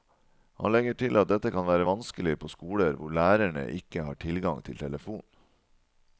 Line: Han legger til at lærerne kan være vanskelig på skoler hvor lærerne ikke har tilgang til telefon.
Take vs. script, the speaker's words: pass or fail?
fail